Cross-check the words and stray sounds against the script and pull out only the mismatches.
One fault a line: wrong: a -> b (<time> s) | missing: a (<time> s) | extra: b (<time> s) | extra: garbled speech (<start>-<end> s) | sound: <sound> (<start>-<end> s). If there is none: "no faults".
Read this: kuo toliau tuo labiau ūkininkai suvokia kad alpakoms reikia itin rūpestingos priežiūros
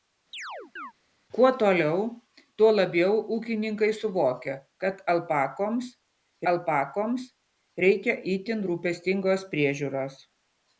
sound: chirp (0.3-0.9 s)
extra: alpakoms (6.5 s)